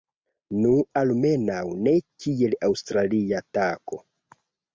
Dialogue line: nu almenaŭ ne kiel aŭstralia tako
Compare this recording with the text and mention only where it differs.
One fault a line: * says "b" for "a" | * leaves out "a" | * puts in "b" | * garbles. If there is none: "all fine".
all fine